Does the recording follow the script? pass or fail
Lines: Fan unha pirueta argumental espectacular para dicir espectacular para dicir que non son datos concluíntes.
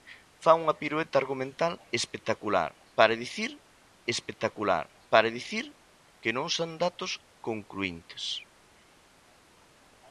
pass